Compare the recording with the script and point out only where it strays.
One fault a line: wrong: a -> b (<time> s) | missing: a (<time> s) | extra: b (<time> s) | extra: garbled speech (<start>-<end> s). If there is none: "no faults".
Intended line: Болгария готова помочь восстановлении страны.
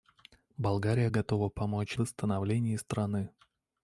no faults